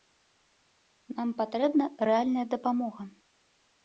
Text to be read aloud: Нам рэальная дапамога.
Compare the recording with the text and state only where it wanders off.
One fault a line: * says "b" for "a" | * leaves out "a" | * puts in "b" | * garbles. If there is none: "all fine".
* puts in "патрэбна"